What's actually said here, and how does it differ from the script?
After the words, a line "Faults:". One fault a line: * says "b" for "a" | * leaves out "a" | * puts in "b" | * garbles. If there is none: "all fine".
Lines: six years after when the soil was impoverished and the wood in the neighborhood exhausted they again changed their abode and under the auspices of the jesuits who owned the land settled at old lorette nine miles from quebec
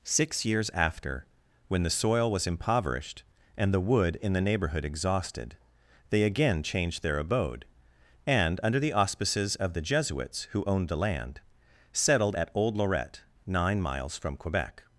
six years after when the soil was impoverished and the wood in the neighborhood exhausted they again changed their abode and under the auspices of the jesuits who owned the land settled at old lorette nine miles from quebec
Faults:
all fine